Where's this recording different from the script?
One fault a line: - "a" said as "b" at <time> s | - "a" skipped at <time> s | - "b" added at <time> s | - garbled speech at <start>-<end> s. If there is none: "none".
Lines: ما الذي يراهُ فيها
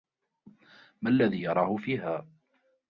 none